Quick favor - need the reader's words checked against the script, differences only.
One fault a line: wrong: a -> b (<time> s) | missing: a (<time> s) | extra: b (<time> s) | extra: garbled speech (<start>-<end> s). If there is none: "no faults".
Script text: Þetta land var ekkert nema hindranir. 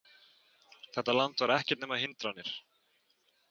no faults